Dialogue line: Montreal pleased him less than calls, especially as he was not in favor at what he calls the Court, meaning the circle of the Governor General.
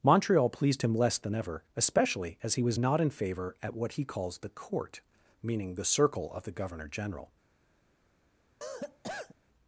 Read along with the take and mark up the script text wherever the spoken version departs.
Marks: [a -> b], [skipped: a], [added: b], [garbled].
Montreal pleased him less than [calls, -> ever] especially as he was not in favor at what he calls the Court, meaning the circle of the Governor General.